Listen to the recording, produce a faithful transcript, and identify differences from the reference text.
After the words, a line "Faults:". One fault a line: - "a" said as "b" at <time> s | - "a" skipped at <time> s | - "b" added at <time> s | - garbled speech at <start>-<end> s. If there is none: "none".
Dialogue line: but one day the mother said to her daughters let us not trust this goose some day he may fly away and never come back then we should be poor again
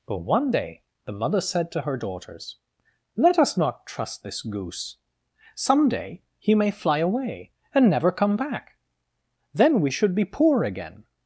but one day the mother said to her daughters let us not trust this goose some day he may fly away and never come back then we should be poor again
Faults:
none